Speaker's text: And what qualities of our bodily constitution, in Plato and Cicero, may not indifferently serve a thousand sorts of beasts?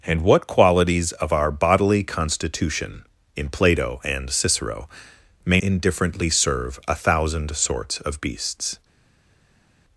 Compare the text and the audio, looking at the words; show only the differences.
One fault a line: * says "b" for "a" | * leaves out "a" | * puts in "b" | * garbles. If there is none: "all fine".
* leaves out "not"